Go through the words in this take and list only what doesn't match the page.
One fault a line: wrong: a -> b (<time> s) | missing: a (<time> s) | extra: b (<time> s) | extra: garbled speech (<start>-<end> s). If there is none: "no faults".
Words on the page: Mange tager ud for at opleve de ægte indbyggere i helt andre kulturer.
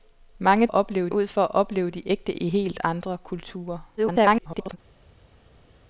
wrong: tager -> opleve (0.7 s)
missing: indbyggere (2.3 s)
extra: garbled speech (4.0-4.8 s)